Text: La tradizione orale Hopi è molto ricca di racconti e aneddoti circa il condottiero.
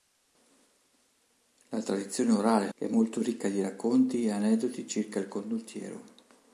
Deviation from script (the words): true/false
true